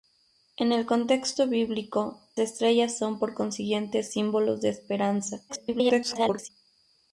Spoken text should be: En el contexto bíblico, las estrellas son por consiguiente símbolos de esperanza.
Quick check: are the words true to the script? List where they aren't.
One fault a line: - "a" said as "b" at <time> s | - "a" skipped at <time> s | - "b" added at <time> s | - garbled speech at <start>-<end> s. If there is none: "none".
- "las" skipped at 2.2 s
- garbled speech at 5.5-6.5 s